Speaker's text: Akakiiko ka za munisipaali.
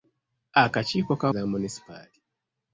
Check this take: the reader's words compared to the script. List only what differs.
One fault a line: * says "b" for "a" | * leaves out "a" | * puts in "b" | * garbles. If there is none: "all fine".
all fine